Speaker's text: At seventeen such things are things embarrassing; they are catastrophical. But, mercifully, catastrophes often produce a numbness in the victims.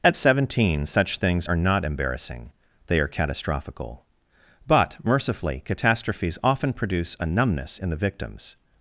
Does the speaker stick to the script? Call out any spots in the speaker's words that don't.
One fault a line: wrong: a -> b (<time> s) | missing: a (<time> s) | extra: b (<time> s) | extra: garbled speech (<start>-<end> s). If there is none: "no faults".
wrong: things -> not (1.6 s)